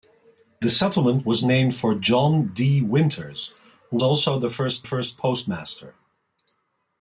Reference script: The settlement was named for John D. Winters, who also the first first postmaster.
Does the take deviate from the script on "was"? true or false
false